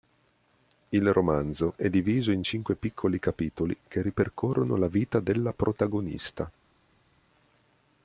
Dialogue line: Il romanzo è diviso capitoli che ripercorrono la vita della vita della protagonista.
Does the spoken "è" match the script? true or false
true